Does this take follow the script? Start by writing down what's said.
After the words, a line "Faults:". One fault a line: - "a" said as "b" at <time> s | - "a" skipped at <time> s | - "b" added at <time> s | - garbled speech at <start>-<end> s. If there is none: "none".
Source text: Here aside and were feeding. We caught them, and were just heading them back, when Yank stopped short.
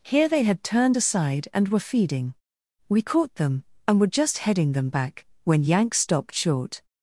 Here they had turned aside and were feeding. We caught them, and were just heading them back, when Yank stopped short.
Faults:
- "they had turned" added at 0.3 s